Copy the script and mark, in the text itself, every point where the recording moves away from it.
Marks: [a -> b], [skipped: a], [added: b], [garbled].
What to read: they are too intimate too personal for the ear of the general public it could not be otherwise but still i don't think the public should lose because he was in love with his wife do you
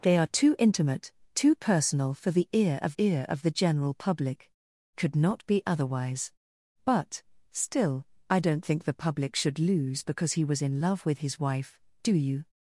they are too intimate too personal for the ear of [added: ear of] the general public [skipped: it] could not be otherwise but still i don't think the public should lose because he was in love with his wife do you